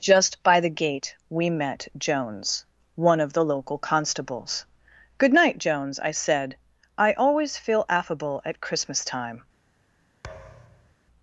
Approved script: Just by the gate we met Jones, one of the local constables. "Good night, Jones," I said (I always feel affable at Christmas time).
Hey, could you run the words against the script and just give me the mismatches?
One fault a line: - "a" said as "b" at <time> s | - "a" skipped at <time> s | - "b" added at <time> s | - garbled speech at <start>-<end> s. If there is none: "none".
none